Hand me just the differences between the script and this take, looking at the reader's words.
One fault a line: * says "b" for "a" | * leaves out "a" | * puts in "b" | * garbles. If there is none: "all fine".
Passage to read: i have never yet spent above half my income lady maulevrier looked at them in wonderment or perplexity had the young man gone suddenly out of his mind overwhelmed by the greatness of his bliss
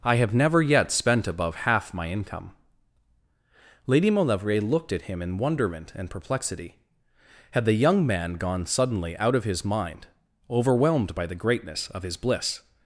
* says "him" for "them"
* says "and" for "or"